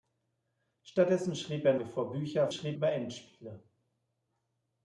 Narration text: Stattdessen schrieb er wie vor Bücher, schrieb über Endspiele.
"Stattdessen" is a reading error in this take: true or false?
false